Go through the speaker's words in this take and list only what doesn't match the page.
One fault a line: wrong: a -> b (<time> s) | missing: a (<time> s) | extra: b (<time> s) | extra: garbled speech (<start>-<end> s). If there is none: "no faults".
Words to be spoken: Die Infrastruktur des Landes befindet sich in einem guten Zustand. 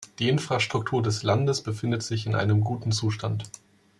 no faults